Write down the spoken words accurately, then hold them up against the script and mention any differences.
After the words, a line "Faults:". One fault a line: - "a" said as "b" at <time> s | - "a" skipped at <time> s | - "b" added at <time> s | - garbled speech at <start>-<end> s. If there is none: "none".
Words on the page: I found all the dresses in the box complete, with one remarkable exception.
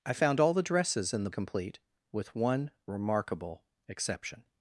I found all the dresses in the complete, with one remarkable exception.
Faults:
- "box" skipped at 1.3 s